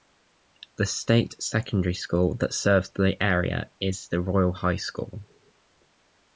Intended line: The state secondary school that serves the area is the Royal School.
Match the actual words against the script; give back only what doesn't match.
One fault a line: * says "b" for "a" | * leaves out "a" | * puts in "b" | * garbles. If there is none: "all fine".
* puts in "High"